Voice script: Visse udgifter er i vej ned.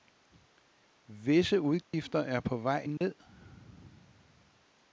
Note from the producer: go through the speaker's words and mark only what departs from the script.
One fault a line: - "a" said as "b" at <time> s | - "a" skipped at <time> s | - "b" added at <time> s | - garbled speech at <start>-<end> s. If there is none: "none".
- "i" said as "på" at 2.4 s